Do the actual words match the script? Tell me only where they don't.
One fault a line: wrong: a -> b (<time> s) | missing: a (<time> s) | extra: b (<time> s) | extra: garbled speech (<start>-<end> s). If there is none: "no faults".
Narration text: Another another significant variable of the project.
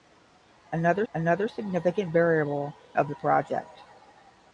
no faults